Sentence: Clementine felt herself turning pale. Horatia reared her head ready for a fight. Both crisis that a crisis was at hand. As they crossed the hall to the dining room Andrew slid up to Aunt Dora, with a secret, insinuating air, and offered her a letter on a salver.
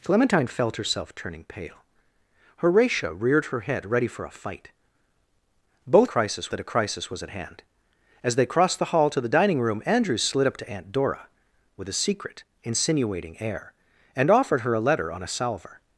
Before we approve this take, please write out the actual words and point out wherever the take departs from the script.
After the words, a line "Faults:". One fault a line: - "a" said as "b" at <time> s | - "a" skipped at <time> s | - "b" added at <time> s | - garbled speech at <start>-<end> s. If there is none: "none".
Clementine felt herself turning pale. Horatia reared her head ready for a fight. Both crisis that a crisis was at hand. As they crossed the hall to the dining room Andrew slid up to Aunt Dora, with a secret, insinuating air, and offered her a letter on a salver.
Faults:
none